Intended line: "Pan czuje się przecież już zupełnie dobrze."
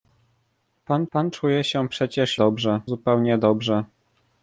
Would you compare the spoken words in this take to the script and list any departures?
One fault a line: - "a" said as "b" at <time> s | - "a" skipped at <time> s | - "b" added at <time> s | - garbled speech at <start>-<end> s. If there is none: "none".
- "pan" added at 1.1 s
- "już" said as "dobrze" at 2.3 s